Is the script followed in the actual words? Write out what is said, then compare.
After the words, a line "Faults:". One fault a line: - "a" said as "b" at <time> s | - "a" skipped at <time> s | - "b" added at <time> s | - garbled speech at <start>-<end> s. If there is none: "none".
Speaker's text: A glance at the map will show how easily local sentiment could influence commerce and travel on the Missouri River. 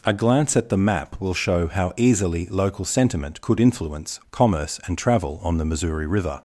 A glance at the map will show how easily local sentiment could influence commerce and travel on the Missouri River.
Faults:
none